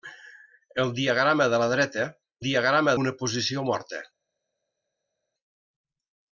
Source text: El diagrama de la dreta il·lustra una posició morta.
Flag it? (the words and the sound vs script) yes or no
yes